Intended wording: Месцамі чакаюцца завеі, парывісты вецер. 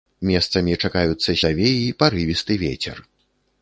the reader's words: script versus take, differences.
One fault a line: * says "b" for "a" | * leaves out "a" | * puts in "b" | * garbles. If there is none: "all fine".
all fine